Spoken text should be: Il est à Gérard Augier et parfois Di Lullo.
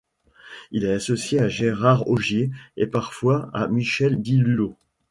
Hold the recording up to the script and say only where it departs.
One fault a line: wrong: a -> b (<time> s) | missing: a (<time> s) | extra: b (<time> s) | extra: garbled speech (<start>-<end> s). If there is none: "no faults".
extra: associé (0.9 s)
extra: à Michel (3.5 s)